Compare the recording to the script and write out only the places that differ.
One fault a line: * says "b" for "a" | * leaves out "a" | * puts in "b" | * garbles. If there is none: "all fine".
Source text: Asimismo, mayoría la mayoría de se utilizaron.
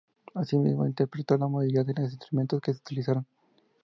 * says "interpretó" for "mayoría"
* puts in "los instrumentos que"